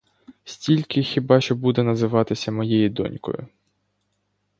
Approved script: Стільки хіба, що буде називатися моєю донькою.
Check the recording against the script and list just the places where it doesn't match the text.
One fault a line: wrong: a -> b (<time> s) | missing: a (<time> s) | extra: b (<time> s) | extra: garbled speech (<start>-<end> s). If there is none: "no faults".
no faults